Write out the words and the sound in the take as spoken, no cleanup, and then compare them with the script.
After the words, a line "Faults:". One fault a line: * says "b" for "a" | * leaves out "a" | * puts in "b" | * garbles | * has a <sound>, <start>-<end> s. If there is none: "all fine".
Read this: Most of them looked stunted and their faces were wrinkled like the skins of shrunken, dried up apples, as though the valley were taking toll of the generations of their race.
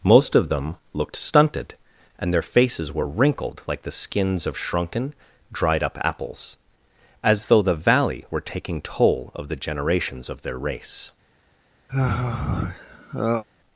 Most of them looked stunted and their faces were wrinkled like the skins of shrunken, dried up apples, as though the valley were taking toll of the generations of their race.
Faults:
* has a sigh, 11.9-13.4 s